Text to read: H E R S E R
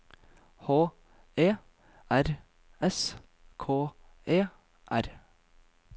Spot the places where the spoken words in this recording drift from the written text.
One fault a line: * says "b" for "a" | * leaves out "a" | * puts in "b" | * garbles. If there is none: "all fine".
* puts in "K"